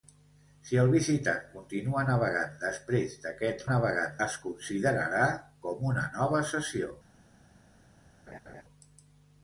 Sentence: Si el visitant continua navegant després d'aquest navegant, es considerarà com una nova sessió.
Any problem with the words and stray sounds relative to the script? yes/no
yes